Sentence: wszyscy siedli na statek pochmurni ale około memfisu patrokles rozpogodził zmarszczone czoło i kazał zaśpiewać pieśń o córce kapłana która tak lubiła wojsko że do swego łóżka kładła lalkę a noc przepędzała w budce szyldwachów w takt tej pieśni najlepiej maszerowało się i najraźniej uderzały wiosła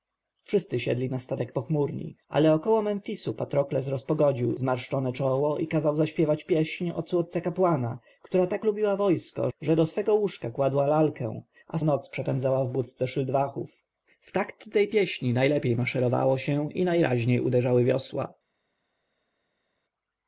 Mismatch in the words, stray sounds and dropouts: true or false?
false